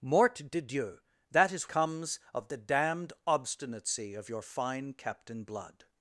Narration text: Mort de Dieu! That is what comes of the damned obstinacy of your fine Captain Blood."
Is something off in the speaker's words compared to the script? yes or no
yes